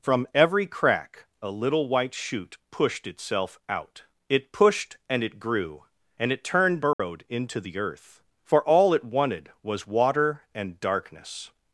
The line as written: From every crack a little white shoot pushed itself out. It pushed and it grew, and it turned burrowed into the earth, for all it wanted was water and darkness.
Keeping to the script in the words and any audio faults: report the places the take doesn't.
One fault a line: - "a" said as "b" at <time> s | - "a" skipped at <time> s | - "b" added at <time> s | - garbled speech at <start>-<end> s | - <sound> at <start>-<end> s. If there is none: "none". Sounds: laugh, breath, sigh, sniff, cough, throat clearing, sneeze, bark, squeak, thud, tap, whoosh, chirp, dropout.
- dropout at 6.9-7.0 s